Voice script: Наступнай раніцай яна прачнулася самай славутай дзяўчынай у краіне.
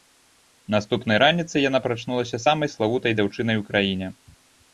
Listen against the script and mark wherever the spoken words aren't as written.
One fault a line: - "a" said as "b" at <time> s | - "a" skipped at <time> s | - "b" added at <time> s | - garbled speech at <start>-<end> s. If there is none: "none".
none